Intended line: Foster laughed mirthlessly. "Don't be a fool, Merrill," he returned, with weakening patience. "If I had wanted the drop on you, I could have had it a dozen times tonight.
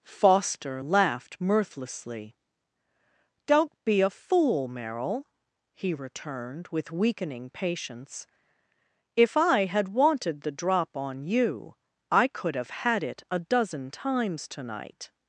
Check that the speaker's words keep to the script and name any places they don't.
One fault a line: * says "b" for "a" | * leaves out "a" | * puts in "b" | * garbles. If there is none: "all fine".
all fine